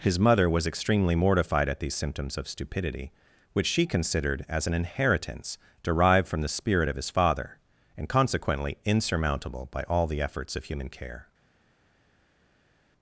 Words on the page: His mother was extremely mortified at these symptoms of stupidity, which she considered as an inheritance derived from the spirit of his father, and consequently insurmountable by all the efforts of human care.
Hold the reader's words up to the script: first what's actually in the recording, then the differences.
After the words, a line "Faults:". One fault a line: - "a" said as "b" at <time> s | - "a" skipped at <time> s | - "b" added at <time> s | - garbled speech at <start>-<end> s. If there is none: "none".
His mother was extremely mortified at these symptoms of stupidity, which she considered as an inheritance derived from the spirit of his father, and consequently insurmountable by all the efforts of human care.
Faults:
none